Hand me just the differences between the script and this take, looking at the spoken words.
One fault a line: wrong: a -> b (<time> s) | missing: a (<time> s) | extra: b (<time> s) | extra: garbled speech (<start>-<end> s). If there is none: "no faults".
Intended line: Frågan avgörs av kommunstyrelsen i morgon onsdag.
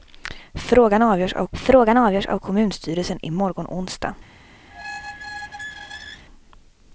extra: frågan avgörs av (1.5 s)